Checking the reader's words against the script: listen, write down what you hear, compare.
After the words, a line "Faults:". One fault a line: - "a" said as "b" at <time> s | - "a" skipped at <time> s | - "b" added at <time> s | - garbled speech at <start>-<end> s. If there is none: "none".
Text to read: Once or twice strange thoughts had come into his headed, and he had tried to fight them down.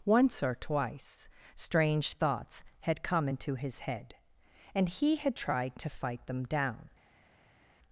Once or twice strange thoughts had come into his head, and he had tried to fight them down.
Faults:
- "headed" said as "head" at 3.8 s